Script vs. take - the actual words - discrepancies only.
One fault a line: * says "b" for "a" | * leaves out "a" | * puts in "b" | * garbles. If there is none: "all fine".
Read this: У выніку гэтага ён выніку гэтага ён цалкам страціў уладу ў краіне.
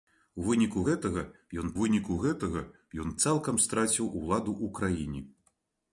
all fine